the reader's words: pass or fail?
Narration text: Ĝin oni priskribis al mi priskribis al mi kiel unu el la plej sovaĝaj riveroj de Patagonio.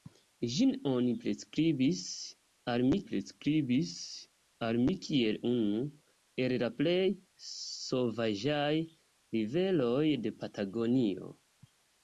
pass